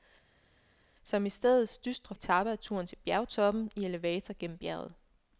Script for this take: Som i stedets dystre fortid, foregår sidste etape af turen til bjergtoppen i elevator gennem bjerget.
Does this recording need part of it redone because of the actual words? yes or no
yes